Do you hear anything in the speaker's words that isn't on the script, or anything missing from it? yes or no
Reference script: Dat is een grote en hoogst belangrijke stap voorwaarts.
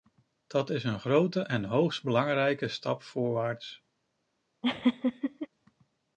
no